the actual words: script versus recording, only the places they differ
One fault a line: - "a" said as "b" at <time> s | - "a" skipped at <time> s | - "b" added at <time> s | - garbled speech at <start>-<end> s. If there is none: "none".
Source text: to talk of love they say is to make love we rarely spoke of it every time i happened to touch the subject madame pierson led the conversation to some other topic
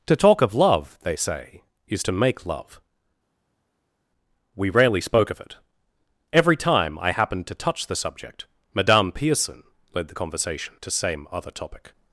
- "some" said as "same" at 10.9 s